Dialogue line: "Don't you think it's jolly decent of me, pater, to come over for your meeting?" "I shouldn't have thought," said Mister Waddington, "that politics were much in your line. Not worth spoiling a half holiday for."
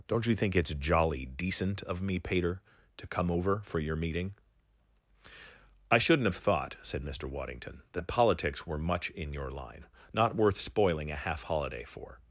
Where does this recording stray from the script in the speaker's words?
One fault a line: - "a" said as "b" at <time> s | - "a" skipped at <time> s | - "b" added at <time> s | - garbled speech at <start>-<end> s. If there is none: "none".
none